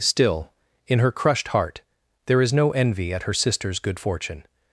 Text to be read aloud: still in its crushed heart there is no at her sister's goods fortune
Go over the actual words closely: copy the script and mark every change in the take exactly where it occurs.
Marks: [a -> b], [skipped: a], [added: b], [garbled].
still in [its -> her] crushed heart there is no [added: envy] at her sister's [goods -> good] fortune